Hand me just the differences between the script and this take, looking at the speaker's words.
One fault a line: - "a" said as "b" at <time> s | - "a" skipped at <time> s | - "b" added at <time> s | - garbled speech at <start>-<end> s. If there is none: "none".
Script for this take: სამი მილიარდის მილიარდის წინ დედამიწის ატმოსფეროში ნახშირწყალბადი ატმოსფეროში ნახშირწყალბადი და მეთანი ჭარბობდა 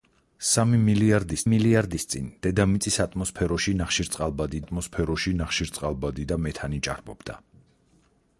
none